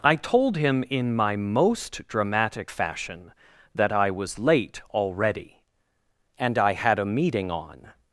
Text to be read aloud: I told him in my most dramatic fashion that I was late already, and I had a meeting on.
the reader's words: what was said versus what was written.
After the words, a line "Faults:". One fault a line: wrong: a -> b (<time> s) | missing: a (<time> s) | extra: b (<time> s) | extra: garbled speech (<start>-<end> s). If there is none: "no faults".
I told him in my most dramatic fashion that I was late already, and I had a meeting on.
Faults:
no faults